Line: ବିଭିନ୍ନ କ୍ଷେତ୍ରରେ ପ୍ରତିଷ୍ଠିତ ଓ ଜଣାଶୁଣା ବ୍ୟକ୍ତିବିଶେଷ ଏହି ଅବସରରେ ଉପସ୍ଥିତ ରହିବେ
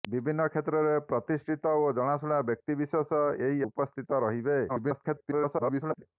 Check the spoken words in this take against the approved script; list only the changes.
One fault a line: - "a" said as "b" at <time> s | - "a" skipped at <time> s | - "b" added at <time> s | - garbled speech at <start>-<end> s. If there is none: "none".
- "ଅବସରରେ" skipped at 3.6 s
- garbled speech at 4.7-6.0 s